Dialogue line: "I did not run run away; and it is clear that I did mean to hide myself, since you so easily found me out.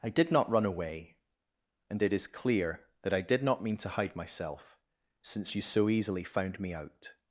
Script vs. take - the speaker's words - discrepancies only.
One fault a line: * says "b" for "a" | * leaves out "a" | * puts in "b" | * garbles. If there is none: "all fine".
* leaves out "run"
* puts in "not"